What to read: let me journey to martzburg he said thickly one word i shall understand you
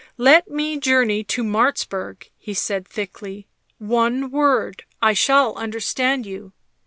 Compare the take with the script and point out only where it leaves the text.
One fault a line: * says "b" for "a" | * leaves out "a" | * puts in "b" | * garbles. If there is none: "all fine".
all fine